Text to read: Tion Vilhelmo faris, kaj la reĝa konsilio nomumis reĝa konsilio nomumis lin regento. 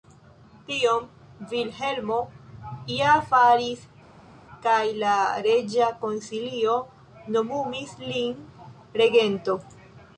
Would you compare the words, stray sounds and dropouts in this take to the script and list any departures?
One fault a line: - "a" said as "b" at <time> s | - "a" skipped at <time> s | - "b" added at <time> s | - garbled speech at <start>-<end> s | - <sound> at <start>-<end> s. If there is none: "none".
- "ja" added at 2.9 s
- "reĝa konsilio nomumis" skipped at 8.0 s